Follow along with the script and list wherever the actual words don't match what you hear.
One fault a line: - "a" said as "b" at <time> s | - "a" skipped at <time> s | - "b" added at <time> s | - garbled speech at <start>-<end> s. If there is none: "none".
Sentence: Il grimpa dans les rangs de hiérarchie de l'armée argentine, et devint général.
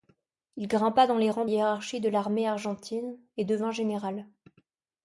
none